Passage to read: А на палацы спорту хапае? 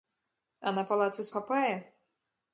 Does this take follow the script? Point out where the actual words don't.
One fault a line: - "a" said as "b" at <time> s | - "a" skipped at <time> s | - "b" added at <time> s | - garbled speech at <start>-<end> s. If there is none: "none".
- "спорту" skipped at 1.3 s